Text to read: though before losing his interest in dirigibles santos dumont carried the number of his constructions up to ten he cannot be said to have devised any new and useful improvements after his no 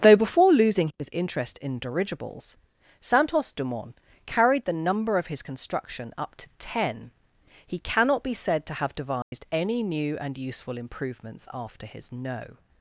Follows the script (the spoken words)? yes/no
no